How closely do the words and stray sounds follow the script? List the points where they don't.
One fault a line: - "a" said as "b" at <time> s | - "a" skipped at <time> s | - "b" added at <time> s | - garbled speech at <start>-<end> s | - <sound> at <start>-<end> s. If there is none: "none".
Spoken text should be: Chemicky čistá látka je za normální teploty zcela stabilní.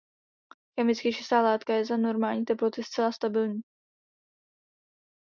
none